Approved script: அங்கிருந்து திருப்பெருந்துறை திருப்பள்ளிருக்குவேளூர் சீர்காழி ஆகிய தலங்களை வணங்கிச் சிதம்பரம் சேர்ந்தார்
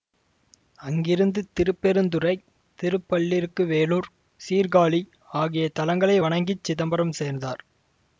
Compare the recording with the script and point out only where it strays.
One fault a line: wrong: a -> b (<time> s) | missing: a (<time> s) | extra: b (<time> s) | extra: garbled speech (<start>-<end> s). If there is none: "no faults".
no faults